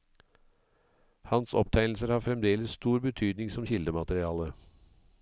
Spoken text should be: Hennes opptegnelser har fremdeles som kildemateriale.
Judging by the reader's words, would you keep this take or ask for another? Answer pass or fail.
fail